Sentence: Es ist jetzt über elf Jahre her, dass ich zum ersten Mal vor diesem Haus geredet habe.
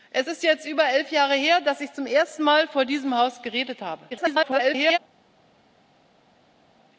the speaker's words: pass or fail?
fail